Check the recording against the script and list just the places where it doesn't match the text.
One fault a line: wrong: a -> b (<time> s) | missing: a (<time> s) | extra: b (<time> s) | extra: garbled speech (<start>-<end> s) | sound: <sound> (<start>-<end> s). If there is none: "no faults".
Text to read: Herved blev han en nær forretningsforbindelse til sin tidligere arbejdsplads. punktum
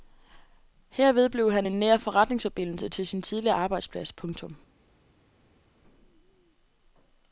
no faults